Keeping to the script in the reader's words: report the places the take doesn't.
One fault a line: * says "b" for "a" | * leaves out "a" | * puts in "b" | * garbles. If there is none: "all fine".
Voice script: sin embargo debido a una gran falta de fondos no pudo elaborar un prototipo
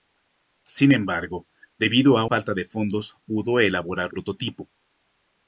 * leaves out "una gran"
* leaves out "no"
* leaves out "un"